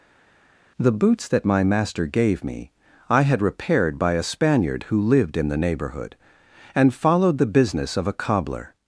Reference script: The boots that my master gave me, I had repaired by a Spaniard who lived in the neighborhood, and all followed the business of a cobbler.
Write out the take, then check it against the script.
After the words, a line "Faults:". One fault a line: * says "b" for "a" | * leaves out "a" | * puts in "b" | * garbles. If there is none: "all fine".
The boots that my master gave me, I had repaired by a Spaniard who lived in the neighborhood, and followed the business of a cobbler.
Faults:
* leaves out "all"